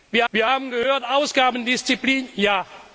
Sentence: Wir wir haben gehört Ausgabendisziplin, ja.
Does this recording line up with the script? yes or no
yes